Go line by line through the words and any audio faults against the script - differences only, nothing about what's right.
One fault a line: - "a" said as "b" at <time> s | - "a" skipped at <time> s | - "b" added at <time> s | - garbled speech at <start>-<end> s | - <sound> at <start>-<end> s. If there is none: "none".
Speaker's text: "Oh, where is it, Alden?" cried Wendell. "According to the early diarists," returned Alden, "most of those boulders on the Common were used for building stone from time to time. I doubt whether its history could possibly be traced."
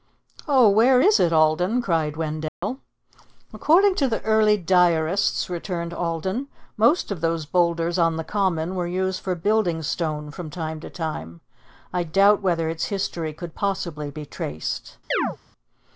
- dropout at 2.5-2.6 s
- chirp at 15.1-15.4 s